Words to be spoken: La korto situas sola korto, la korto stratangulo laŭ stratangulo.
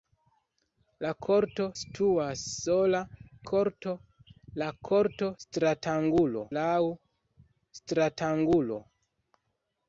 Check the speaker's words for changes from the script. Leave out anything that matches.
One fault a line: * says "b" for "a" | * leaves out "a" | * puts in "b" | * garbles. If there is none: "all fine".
all fine